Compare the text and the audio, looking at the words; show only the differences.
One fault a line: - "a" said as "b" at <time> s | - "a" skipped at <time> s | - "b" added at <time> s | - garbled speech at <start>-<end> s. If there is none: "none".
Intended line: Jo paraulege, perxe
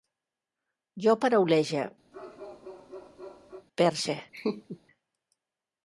none